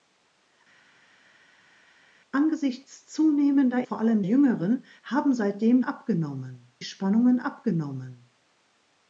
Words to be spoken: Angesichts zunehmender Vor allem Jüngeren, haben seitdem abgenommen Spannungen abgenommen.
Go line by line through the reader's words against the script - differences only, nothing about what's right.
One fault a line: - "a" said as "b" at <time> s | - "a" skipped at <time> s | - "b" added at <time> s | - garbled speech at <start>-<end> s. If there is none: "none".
none